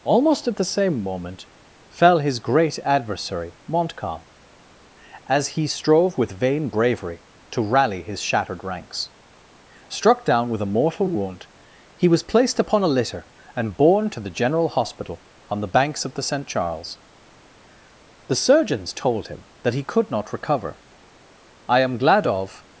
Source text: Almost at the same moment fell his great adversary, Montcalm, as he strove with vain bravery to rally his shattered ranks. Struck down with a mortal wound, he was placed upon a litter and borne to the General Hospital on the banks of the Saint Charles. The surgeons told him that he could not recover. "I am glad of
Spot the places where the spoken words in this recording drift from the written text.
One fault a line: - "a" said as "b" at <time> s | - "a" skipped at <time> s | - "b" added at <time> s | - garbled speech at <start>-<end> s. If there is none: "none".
none